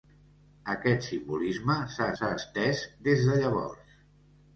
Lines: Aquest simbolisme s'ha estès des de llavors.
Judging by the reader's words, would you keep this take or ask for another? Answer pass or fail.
fail